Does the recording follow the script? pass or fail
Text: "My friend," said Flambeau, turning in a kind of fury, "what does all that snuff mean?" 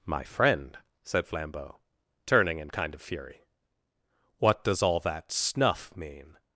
fail